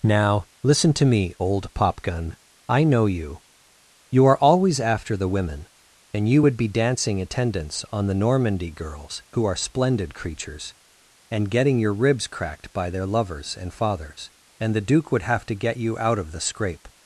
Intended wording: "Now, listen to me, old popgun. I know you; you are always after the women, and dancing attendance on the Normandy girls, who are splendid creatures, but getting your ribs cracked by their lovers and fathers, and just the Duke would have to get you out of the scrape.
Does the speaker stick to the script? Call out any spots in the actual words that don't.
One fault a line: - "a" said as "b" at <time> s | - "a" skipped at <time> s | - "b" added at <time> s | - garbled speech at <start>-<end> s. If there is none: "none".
- "you would be" added at 6.3 s
- "but" said as "and" at 11.3 s
- "just" skipped at 14.7 s